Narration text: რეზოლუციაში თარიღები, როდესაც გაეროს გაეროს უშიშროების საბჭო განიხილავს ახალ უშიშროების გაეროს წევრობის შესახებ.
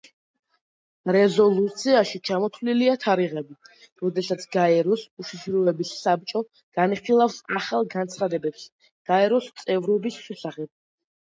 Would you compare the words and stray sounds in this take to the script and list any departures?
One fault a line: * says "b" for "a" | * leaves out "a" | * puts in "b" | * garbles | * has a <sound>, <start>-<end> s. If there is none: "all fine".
* puts in "ჩამოთვლილია"
* leaves out "გაეროს"
* says "განცხადებებს" for "უშიშროების"